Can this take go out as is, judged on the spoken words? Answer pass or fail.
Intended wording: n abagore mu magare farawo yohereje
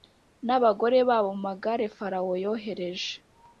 fail